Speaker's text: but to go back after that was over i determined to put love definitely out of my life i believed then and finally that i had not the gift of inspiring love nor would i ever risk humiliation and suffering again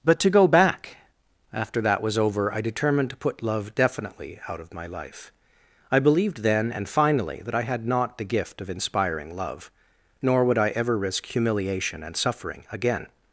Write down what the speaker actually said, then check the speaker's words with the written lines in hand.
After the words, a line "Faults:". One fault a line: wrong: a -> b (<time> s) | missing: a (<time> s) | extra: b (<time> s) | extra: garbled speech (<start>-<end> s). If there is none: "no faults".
but to go back after that was over i determined to put love definitely out of my life i believed then and finally that i had not the gift of inspiring love nor would i ever risk humiliation and suffering again
Faults:
no faults